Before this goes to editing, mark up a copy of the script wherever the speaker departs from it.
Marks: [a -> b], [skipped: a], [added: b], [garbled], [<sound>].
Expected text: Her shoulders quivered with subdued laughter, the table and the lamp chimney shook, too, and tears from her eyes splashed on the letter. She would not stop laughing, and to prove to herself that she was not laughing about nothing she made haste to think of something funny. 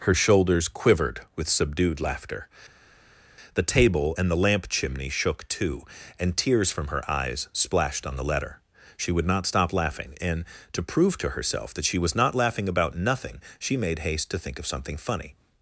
Her shoulders quivered with subdued laughter, the table and the lamp chimney shook, too, and tears from her eyes splashed on the letter. She would not stop laughing, and to prove to herself that she was not laughing about nothing she made haste to think of something funny.